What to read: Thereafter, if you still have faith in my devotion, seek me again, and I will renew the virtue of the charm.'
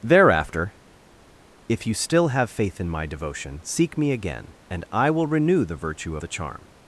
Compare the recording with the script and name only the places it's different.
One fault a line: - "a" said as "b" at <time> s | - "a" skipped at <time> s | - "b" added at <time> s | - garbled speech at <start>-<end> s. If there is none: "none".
- "of" skipped at 6.2 s